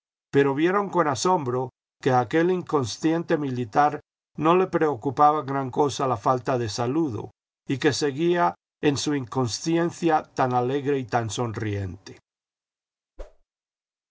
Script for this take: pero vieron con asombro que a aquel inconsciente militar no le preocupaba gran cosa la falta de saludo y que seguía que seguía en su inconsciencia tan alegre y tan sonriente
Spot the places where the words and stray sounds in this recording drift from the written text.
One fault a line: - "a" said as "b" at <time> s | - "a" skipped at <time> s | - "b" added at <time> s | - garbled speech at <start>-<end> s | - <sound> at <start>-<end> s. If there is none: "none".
- "que seguía" skipped at 8.5 s
- whoosh at 13.2-13.4 s